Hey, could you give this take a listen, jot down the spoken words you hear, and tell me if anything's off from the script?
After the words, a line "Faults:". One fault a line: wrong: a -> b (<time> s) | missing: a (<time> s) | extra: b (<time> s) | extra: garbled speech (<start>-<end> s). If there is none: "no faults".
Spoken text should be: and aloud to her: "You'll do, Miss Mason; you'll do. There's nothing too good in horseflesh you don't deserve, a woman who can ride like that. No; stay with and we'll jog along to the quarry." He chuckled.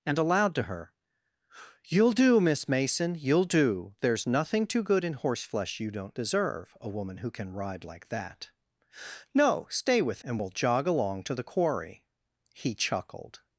and aloud to her: "You'll do, Miss Mason; you'll do. There's nothing too good in horseflesh you don't deserve, a woman who can ride like that. No; stay with and we'll jog along to the quarry." He chuckled.
Faults:
no faults